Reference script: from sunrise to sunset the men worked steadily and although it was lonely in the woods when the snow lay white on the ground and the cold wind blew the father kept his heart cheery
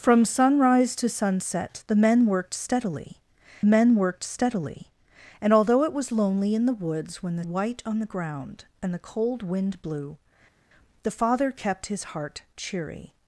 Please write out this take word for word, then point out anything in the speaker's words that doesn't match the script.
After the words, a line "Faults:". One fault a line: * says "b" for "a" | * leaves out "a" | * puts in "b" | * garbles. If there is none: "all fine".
from sunrise to sunset the men worked steadily men worked steadily and although it was lonely in the woods when the white on the ground and the cold wind blew the father kept his heart cheery
Faults:
* puts in "men worked steadily"
* leaves out "snow lay"